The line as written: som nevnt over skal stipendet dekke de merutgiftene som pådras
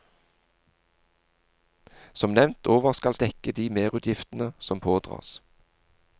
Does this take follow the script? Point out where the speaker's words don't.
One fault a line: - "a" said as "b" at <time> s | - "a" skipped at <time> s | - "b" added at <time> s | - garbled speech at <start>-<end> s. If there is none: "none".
- "stipendet" skipped at 3.1 s